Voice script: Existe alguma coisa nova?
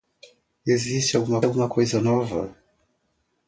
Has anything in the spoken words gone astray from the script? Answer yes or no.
yes